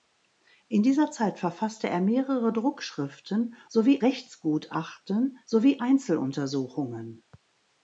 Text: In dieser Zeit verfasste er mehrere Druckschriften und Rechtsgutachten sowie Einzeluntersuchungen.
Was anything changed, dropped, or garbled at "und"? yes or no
yes